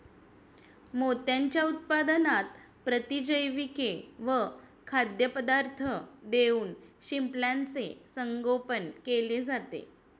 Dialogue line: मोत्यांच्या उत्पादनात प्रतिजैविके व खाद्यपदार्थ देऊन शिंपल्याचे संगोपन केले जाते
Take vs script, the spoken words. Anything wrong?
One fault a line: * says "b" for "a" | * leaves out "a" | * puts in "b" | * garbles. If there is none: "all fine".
all fine